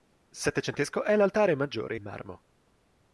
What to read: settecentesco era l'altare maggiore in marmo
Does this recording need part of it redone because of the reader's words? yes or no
yes